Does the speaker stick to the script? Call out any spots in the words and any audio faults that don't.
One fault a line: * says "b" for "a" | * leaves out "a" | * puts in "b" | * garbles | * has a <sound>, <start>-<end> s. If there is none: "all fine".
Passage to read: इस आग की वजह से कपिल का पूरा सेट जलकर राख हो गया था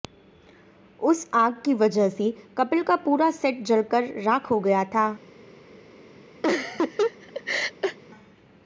* says "उस" for "इस"
* has a laugh, 6.4-8.0 s